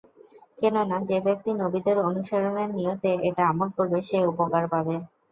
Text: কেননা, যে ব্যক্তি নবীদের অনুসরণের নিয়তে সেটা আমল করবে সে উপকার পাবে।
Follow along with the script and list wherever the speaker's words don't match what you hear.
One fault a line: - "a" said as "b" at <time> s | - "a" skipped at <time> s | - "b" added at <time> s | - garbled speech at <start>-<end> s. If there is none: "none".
- "সেটা" said as "এটা" at 3.3 s